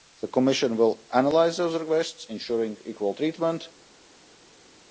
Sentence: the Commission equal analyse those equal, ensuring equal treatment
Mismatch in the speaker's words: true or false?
true